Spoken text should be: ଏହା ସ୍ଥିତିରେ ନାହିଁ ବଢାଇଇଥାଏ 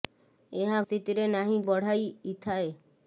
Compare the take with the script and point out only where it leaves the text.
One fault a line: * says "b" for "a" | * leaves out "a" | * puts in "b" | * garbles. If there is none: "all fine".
all fine